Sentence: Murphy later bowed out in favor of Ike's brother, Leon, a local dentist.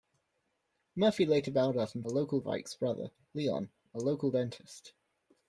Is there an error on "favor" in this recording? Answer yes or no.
yes